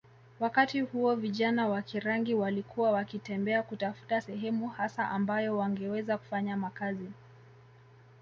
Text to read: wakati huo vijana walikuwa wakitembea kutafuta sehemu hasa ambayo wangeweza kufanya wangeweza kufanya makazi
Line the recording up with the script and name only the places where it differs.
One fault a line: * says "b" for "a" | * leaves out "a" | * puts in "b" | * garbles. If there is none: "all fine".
* puts in "wa Kirangi"
* leaves out "wangeweza kufanya"